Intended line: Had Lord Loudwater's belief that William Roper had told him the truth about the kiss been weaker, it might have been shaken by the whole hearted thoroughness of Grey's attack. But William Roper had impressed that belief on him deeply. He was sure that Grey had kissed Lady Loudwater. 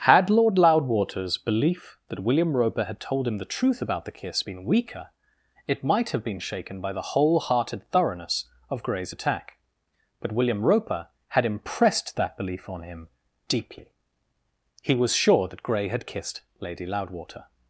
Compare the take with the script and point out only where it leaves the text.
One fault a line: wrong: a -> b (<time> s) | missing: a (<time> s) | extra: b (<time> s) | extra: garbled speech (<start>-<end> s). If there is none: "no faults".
no faults